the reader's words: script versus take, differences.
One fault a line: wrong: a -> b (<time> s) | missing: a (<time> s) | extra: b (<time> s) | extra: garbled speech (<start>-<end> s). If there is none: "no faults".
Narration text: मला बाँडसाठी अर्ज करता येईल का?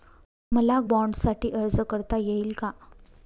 no faults